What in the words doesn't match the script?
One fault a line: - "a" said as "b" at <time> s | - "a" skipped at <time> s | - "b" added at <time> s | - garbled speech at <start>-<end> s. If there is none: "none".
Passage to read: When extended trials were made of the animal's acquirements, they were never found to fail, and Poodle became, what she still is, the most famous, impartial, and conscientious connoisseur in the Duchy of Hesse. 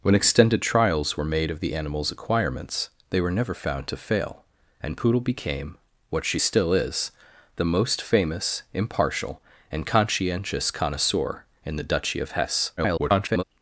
- garbled speech at 12.8-13.4 s